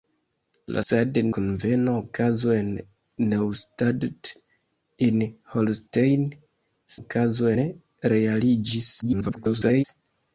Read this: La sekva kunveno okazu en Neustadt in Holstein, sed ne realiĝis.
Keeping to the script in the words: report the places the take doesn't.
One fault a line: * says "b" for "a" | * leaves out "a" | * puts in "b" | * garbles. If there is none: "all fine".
* says "sed" for "sekva"
* says "okazu" for "sed"
* garbles